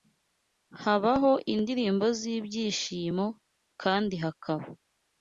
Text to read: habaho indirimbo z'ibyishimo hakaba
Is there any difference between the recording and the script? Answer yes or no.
yes